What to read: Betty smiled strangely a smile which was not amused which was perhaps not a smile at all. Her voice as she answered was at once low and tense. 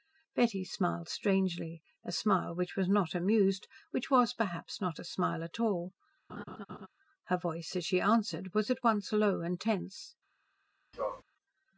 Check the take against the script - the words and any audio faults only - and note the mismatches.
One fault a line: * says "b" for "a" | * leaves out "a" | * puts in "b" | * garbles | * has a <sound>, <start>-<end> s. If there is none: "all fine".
* has a laugh, 6.3-6.9 s
* has a sneeze, 10.9-11.2 s